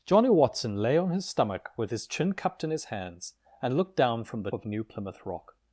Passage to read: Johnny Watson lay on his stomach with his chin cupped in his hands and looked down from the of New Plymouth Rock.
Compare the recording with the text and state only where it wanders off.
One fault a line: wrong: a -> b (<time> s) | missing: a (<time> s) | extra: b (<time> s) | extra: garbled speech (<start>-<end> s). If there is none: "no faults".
no faults